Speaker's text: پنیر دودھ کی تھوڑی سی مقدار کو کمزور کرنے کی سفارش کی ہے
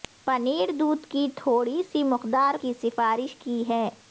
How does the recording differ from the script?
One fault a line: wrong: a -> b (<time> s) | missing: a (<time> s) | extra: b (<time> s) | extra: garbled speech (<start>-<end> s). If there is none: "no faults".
missing: کو کمزور کرنے (2.5 s)